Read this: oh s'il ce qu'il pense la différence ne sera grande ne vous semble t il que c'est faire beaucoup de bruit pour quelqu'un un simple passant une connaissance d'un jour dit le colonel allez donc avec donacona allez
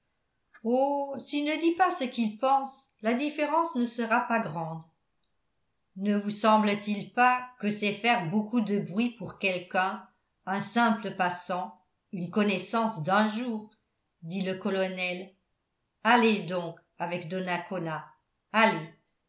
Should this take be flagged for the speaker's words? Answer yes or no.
yes